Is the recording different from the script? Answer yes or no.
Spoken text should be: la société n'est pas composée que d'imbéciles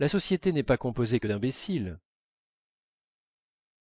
no